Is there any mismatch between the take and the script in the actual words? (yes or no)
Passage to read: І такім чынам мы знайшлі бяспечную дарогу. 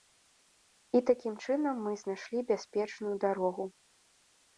no